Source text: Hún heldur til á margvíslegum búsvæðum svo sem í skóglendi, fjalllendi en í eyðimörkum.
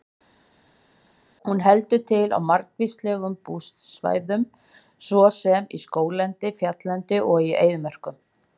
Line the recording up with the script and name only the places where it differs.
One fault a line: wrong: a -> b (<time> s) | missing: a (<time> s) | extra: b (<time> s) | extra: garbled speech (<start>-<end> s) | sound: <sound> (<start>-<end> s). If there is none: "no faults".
wrong: en -> og (7.3 s)